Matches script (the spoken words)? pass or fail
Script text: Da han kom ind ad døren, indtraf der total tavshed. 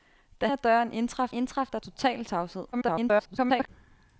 fail